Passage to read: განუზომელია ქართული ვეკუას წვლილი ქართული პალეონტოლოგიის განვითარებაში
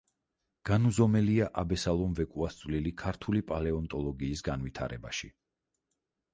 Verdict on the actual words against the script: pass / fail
fail